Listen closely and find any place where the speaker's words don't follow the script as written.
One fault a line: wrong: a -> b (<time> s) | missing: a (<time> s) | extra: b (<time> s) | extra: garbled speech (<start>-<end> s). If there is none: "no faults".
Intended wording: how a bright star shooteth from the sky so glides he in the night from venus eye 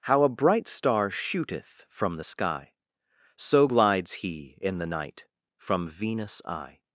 no faults